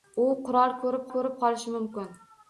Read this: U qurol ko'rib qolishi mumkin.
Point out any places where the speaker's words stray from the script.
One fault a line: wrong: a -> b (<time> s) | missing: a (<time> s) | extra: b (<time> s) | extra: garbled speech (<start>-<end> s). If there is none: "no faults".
extra: ko'rib (1.1 s)